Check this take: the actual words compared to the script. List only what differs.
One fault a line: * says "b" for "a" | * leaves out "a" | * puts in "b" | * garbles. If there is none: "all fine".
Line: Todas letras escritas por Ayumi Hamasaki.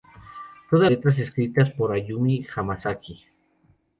all fine